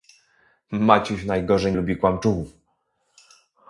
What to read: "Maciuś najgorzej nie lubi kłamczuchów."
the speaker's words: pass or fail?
fail